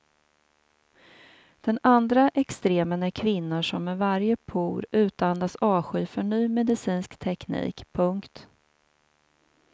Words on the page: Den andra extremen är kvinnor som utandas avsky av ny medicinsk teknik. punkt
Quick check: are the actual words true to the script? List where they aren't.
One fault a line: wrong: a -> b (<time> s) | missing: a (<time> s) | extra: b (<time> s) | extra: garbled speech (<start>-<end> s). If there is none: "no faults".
extra: med varje por (3.8 s)
wrong: av -> för (6.0 s)